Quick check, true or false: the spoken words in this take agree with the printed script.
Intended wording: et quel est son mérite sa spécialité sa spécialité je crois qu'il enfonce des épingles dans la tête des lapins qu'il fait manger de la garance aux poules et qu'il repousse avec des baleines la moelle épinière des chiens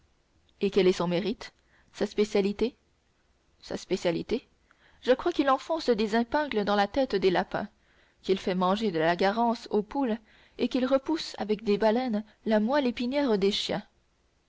true